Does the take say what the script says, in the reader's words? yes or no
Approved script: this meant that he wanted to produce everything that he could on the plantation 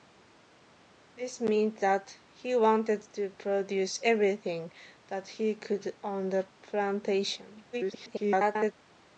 no